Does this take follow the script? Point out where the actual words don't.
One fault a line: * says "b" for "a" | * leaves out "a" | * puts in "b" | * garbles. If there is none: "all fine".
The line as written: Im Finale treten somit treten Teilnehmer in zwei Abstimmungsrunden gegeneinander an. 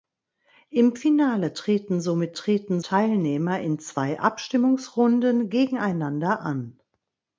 all fine